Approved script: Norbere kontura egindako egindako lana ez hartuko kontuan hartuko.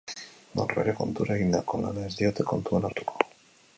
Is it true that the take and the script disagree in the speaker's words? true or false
true